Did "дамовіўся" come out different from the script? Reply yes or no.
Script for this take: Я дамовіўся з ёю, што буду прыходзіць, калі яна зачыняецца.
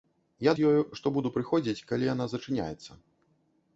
yes